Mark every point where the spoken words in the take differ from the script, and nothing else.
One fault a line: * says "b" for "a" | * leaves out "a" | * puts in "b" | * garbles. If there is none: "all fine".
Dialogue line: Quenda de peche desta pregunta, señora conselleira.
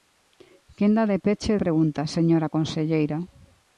* leaves out "desta"